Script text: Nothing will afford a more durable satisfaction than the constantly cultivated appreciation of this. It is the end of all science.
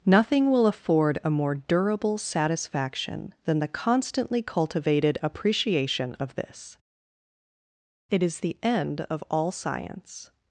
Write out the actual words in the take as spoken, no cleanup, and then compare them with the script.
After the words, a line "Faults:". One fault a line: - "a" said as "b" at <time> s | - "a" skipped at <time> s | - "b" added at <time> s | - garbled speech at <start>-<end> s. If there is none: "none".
Nothing will afford a more durable satisfaction than the constantly cultivated appreciation of this. It is the end of all science.
Faults:
none